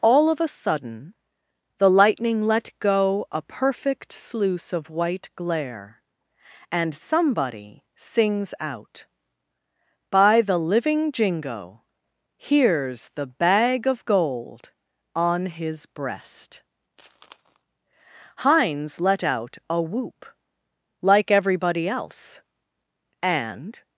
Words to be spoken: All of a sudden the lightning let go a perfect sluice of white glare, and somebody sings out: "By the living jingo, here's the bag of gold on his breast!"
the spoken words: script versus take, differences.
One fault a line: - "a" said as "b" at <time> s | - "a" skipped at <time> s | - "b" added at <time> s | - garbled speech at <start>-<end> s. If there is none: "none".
- "Hines let out a whoop like everybody else and" added at 18.4 s